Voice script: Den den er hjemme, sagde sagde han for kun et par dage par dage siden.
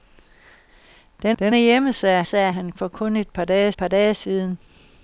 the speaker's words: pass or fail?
pass